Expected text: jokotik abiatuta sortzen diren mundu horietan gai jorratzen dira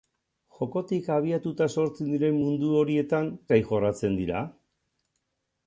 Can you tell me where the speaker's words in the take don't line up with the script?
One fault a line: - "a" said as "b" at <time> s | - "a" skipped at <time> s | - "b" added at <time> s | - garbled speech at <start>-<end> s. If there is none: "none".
none